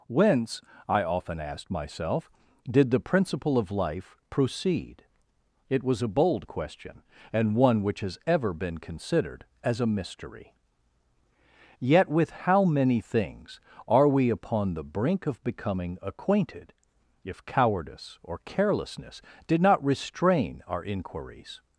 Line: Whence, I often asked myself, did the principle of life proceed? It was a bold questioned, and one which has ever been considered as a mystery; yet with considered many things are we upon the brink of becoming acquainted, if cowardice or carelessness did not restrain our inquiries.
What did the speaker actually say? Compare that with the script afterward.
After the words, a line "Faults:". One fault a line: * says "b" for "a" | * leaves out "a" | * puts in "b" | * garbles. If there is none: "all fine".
Whence, I often asked myself, did the principle of life proceed? It was a bold question, and one which has ever been considered as a mystery; yet with how many things are we upon the brink of becoming acquainted, if cowardice or carelessness did not restrain our inquiries.
Faults:
* says "question" for "questioned"
* says "how" for "considered"